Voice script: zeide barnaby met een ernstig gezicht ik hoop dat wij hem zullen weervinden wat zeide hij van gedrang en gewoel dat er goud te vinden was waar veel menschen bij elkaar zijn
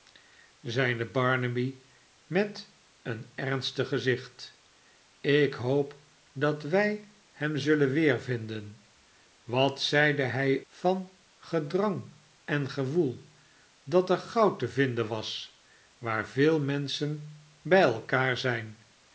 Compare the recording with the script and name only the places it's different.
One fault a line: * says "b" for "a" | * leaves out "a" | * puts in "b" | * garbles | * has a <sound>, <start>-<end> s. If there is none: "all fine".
all fine